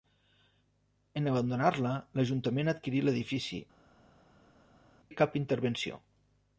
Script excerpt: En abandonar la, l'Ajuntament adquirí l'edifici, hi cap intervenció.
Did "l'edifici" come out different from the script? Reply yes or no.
no